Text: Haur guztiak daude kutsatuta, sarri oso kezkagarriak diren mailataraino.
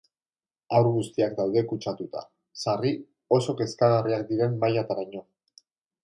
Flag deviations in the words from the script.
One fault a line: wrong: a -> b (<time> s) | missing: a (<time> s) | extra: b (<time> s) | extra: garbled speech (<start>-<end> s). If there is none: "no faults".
no faults